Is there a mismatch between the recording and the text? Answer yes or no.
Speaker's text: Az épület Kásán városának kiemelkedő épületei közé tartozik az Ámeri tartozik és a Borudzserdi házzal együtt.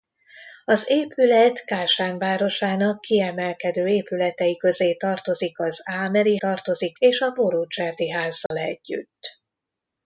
no